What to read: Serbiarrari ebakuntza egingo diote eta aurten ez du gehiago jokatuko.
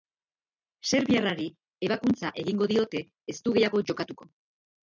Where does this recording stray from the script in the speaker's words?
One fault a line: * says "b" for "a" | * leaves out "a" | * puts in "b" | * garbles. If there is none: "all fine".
* leaves out "eta aurten"